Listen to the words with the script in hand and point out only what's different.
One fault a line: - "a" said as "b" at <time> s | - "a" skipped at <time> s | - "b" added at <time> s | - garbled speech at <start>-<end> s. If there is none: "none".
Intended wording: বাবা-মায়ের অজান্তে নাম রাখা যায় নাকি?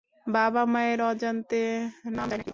- "রাখা" skipped at 2.3 s